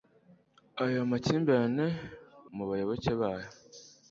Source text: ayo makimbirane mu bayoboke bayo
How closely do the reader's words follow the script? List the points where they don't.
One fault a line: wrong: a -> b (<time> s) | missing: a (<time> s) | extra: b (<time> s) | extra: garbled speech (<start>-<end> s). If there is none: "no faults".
no faults